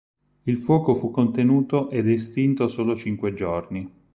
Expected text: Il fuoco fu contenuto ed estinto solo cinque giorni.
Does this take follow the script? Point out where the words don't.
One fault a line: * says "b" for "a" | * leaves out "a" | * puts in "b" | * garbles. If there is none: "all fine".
all fine